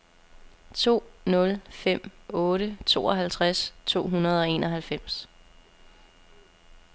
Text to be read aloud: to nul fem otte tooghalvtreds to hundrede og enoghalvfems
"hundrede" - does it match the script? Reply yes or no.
yes